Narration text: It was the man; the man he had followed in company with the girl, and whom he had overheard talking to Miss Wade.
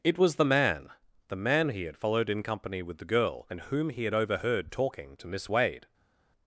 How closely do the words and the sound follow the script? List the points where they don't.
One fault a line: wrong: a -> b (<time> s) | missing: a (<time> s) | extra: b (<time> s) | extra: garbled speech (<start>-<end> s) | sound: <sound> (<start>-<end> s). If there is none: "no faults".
no faults